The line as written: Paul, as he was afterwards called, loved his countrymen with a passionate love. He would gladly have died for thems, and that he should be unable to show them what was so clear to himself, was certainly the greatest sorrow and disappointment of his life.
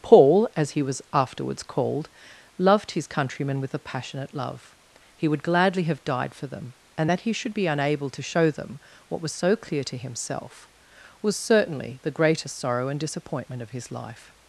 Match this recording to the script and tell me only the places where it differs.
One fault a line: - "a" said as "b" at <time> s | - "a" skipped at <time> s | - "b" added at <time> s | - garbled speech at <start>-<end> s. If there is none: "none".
- "thems" said as "them" at 6.5 s